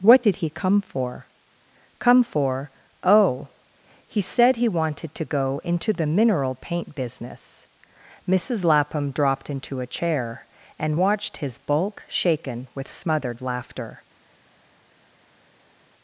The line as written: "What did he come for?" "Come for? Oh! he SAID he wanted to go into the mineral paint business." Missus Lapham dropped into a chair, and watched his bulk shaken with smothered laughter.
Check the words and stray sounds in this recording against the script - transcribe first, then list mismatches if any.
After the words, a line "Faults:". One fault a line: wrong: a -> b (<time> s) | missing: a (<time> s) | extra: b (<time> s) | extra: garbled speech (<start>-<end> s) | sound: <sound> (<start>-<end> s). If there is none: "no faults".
"What did he come for?" "Come for? Oh! he SAID he wanted to go into the mineral paint business." Missus Lapham dropped into a chair, and watched his bulk shaken with smothered laughter.
Faults:
no faults